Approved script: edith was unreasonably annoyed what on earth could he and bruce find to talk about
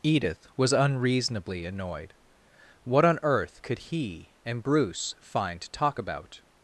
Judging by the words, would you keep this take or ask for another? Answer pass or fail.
pass